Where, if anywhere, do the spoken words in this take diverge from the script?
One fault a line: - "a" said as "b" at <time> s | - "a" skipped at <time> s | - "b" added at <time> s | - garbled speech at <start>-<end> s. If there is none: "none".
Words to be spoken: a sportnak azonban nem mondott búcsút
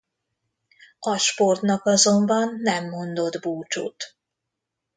none